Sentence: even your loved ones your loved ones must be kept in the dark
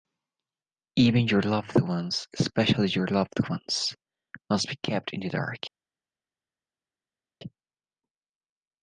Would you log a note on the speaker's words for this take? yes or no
yes